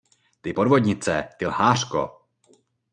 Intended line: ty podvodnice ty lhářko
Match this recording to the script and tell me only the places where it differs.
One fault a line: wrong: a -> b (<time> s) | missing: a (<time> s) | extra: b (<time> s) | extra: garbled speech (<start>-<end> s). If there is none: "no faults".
no faults